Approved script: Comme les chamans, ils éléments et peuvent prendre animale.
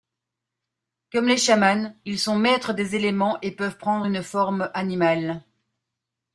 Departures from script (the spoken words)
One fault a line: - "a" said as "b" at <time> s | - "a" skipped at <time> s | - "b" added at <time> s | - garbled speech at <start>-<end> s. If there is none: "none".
- "sont maîtres des" added at 2.2 s
- "une forme" added at 4.0 s